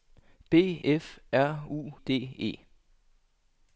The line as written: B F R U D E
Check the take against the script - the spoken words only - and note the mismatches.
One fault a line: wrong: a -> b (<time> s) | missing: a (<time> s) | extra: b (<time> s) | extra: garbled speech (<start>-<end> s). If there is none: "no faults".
no faults